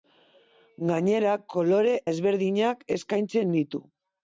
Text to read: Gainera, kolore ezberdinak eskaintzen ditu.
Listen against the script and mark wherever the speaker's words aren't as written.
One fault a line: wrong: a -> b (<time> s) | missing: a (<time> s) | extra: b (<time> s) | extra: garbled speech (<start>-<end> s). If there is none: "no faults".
no faults